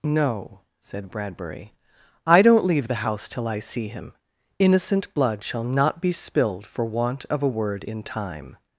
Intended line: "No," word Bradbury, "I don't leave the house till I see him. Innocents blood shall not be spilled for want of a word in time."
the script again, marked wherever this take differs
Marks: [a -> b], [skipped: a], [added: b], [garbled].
"No," [word -> said] Bradbury, "I don't leave the house till I see him. [Innocents -> Innocent] blood shall not be spilled for want of a word in time."